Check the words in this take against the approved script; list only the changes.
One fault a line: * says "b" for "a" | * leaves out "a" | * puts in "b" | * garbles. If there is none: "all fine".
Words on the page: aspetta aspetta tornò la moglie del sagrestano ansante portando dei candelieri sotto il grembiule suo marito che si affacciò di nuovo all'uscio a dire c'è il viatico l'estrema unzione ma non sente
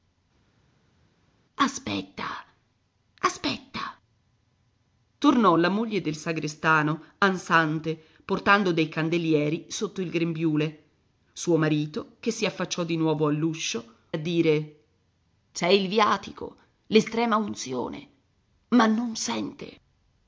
all fine